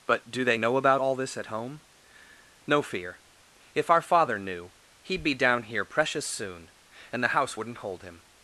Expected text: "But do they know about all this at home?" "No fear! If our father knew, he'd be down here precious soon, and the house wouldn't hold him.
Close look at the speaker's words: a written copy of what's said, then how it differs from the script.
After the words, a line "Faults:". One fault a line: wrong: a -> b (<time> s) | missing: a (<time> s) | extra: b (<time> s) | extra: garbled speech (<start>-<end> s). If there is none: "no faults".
"But do they know about all this at home?" "No fear! If our father knew, he'd be down here precious soon, and the house wouldn't hold him.
Faults:
no faults